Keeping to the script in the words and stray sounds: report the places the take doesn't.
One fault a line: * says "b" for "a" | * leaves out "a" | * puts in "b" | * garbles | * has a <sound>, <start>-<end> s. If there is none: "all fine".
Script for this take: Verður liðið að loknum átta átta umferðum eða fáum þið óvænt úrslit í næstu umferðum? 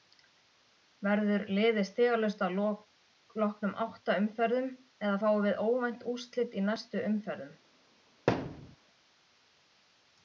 * puts in "stigalaust"
* leaves out "átta"
* says "við" for "þið"
* has a thud, 8.3-8.8 s